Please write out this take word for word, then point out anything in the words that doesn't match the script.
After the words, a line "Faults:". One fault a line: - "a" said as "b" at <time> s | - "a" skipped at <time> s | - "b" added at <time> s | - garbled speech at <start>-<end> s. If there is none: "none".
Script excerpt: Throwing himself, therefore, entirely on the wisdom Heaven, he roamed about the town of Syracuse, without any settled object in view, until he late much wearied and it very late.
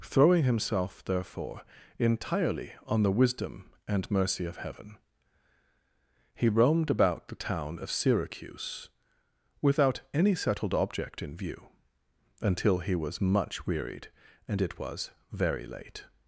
Throwing himself, therefore, entirely on the wisdom and mercy of Heaven, he roamed about the town of Syracuse, without any settled object in view, until he was much wearied and it was very late.
Faults:
- "and mercy of" added at 3.9 s
- "late" said as "was" at 12.9 s
- "was" added at 14.8 s